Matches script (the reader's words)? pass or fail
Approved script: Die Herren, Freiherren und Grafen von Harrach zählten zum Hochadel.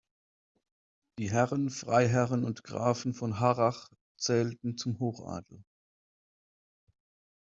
pass